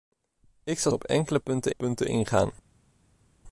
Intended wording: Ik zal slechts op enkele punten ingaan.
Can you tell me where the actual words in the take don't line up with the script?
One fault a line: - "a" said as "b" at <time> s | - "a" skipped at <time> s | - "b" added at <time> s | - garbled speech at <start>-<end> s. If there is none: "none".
- "slechts" skipped at 0.9 s
- "punten" added at 1.7 s